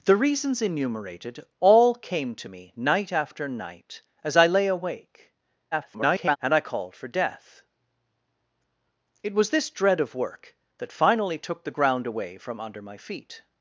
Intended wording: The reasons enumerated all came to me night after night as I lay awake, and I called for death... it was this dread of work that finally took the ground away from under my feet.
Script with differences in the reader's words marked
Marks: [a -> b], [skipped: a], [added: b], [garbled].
The reasons enumerated all came to me night after night as I lay awake, [garbled] and I called for death... it was this dread of work that finally took the ground away from under my feet.